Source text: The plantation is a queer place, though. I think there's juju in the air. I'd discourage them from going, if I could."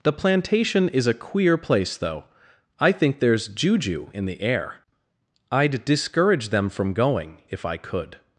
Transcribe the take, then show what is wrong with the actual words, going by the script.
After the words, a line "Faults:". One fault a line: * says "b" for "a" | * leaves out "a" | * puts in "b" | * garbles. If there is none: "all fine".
The plantation is a queer place, though. I think there's juju in the air. I'd discourage them from going, if I could."
Faults:
all fine